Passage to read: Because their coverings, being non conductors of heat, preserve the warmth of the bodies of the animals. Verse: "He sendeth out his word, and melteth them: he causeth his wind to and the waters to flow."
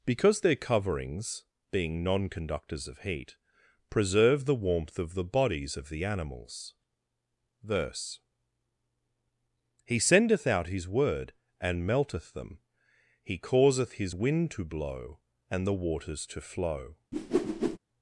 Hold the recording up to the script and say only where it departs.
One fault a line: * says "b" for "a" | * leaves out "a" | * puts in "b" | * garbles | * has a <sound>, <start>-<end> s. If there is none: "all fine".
* puts in "blow"
* has a whoosh, 17.1-17.8 s